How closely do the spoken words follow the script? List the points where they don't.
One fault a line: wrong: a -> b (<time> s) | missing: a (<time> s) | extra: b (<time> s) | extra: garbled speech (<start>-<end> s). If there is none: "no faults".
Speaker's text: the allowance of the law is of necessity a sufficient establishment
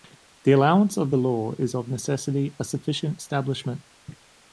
no faults